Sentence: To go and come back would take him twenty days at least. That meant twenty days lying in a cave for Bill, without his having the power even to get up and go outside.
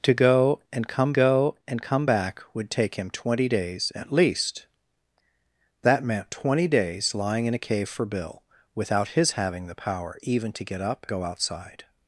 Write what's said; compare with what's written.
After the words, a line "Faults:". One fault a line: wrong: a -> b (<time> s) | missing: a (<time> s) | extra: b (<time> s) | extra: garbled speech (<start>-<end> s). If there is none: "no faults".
To go and come go and come back would take him twenty days at least. That meant twenty days lying in a cave for Bill, without his having the power even to get up go outside.
Faults:
extra: go and come (1.1 s)
missing: and (11.1 s)